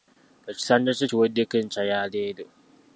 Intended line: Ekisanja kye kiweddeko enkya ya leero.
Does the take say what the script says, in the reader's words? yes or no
yes